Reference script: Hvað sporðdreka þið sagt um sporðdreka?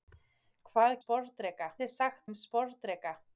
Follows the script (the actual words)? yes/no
yes